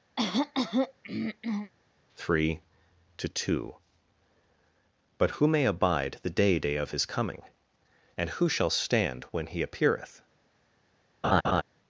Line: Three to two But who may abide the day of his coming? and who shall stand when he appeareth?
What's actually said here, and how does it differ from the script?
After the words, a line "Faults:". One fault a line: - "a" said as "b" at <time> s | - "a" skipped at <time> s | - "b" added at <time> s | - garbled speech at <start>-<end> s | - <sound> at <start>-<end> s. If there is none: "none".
Three to two But who may abide the day day of his coming? and who shall stand when he appeareth?
Faults:
- throat clearing at 0.2-1.7 s
- "day" added at 6.6 s
- laugh at 11.2-11.6 s